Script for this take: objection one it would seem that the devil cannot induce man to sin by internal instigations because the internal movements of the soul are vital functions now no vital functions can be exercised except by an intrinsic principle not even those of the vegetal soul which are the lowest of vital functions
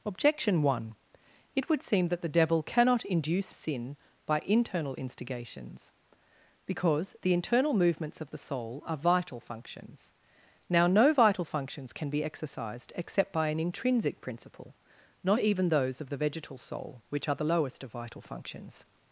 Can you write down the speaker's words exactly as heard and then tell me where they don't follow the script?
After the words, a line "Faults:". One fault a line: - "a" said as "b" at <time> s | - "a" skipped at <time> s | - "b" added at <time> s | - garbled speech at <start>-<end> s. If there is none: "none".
objection one it would seem that the devil cannot induce sin by internal instigations because the internal movements of the soul are vital functions now no vital functions can be exercised except by an intrinsic principle not even those of the vegetal soul which are the lowest of vital functions
Faults:
- "man to" skipped at 3.5 s